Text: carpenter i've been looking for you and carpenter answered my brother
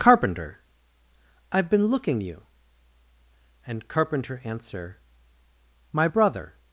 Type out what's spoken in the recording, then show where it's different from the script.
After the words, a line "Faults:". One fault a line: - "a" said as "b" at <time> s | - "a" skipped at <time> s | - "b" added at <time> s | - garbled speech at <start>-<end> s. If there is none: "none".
carpenter i've been looking you and carpenter answer my brother
Faults:
- "for" skipped at 2.2 s
- "answered" said as "answer" at 4.4 s